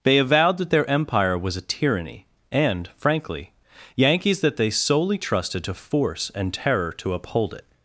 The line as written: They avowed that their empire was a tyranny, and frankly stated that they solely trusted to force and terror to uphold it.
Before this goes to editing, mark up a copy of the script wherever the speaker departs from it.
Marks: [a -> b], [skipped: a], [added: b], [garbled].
They avowed that their empire was a tyranny, and frankly [stated -> yankees] that they solely trusted to force and terror to uphold it.